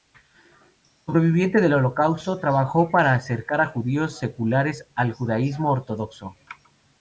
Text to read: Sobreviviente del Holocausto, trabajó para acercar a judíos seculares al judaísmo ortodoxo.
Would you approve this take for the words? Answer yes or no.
yes